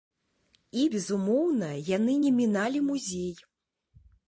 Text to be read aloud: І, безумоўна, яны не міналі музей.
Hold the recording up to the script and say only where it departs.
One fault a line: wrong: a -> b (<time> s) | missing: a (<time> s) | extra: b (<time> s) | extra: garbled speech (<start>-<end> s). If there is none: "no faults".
no faults